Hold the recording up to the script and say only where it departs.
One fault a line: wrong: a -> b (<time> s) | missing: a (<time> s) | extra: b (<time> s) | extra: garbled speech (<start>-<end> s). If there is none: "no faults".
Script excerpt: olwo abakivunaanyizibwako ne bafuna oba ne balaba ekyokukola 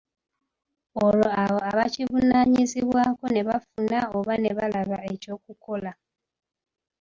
extra: abo (1.4 s)